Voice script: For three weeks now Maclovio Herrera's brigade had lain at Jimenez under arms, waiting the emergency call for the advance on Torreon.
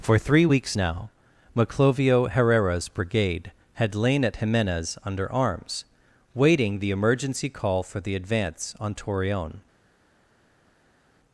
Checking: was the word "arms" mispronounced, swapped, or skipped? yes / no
no